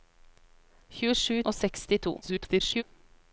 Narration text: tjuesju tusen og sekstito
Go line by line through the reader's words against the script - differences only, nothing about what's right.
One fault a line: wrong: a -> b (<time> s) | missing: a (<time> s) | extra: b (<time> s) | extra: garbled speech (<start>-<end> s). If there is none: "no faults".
missing: tusen (1.4 s)
extra: garbled speech (2.2-2.8 s)